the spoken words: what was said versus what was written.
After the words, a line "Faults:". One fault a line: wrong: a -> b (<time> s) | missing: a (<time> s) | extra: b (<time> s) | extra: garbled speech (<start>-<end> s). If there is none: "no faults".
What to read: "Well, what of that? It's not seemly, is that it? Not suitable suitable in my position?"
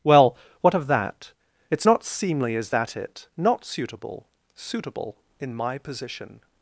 "Well, what of that? It's not seemly, is that it? Not suitable suitable in my position?"
Faults:
no faults